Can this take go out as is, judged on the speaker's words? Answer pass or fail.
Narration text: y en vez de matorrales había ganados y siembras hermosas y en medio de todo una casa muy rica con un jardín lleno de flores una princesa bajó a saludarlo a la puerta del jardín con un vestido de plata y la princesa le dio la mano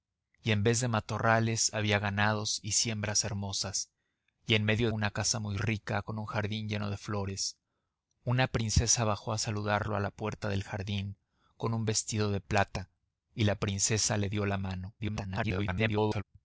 fail